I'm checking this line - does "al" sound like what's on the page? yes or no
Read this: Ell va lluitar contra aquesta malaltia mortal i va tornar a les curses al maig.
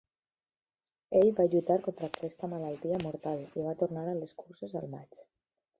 yes